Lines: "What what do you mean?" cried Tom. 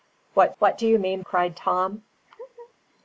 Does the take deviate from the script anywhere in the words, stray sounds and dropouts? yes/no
yes